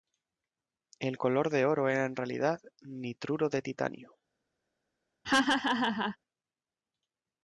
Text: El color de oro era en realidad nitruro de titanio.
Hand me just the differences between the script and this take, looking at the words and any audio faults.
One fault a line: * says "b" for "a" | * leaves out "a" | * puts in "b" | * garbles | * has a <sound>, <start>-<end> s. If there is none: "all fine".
* has a laugh, 5.2-6.2 s